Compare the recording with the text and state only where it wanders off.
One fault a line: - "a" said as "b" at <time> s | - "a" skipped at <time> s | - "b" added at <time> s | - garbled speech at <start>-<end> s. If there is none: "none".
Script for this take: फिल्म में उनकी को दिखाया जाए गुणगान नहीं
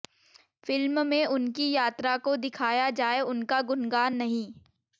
- "यात्रा" added at 1.7 s
- "उनका" added at 3.2 s